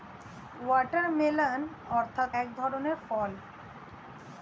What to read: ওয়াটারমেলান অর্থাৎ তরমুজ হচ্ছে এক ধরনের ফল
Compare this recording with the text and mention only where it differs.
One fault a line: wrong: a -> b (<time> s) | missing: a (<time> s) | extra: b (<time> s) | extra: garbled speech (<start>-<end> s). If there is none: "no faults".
missing: তরমুজ হচ্ছে (2.3 s)